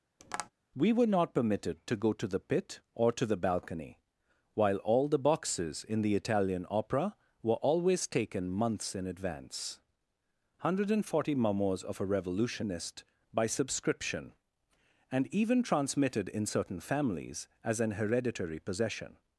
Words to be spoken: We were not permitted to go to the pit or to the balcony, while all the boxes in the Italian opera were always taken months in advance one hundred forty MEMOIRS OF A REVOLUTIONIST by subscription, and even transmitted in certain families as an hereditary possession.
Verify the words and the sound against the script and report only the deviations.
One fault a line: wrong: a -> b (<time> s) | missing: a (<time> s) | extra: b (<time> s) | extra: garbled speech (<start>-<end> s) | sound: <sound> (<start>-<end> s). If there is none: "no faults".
sound: tap (0.2-0.5 s)